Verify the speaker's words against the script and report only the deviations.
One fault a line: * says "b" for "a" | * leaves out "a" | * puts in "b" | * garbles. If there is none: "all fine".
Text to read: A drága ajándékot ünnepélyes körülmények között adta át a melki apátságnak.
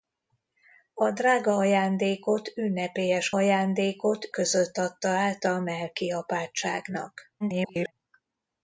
* says "ajándékot" for "körülmények"
* garbles